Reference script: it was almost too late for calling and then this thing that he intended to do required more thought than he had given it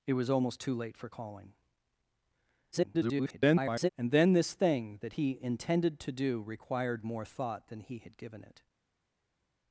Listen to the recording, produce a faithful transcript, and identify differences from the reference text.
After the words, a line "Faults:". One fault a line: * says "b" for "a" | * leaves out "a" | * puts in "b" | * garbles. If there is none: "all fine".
it was almost too late for calling [garbled] and then this thing that he intended to do required more thought than he had given it
Faults:
* garbles